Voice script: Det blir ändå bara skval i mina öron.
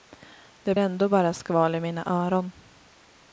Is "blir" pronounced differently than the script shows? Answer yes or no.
yes